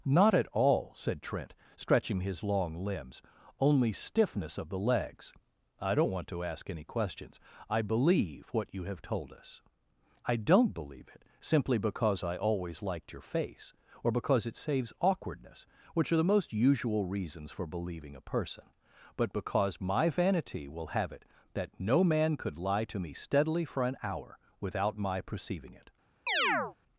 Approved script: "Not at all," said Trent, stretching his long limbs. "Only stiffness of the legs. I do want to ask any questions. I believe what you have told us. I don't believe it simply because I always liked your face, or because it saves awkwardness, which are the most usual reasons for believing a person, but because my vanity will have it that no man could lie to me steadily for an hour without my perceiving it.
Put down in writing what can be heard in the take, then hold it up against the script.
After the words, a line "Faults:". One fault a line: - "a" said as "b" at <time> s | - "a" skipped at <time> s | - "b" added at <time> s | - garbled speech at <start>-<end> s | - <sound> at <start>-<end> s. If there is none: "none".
"Not at all," said Trent, stretching his long limbs. "Only stiffness of the legs. I don't want to ask any questions. I believe what you have told us. I don't believe it simply because I always liked your face, or because it saves awkwardness, which are the most usual reasons for believing a person, but because my vanity will have it that no man could lie to me steadily for an hour without my perceiving it.
Faults:
- "do" said as "don't" at 5.9 s
- chirp at 26.3-26.8 s